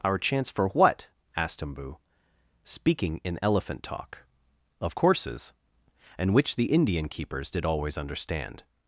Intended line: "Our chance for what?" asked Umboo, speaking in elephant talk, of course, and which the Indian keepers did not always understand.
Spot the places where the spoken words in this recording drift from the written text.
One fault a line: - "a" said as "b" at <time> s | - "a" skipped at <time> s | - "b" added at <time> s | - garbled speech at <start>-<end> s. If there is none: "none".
- "course" said as "courses" at 4.9 s
- "not" skipped at 7.6 s